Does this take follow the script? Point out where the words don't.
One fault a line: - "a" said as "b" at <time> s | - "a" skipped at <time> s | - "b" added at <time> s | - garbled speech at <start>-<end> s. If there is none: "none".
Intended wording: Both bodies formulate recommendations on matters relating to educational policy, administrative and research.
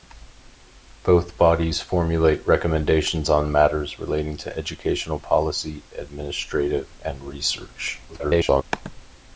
- garbled speech at 8.1-8.6 s